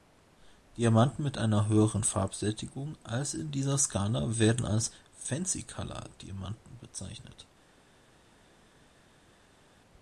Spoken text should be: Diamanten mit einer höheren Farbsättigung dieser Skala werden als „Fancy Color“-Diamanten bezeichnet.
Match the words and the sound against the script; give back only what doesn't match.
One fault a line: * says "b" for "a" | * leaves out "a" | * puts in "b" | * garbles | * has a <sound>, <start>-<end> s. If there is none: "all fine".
* puts in "als in"